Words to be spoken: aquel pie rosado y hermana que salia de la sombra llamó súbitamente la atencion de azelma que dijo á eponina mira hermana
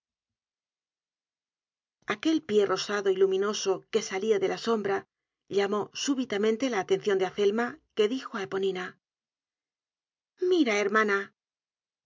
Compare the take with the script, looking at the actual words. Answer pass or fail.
fail